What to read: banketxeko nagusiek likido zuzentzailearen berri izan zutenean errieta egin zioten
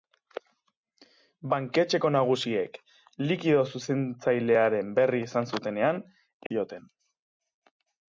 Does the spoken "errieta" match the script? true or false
false